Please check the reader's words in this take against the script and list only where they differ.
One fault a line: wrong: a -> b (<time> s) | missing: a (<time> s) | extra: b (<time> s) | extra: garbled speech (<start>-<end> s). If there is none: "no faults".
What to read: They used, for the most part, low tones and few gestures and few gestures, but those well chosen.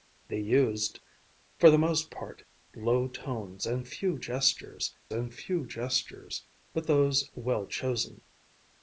no faults